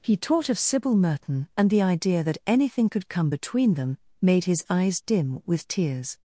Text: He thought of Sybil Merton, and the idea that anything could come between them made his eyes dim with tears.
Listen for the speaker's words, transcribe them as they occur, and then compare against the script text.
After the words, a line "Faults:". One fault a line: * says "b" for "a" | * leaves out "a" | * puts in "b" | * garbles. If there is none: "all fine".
He taught of Sybil Merton, and the idea that anything could come between them made his eyes dim with tears.
Faults:
* says "taught" for "thought"